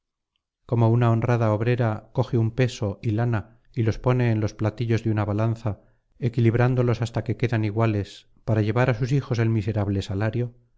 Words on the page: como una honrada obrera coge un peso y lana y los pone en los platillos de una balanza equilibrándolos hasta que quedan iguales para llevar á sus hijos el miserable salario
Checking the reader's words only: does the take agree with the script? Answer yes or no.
yes